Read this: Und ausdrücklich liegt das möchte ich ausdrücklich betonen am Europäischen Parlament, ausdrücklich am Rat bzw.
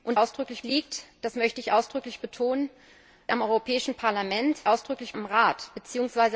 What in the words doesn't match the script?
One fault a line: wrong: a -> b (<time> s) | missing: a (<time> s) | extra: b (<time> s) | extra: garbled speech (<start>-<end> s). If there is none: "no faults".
no faults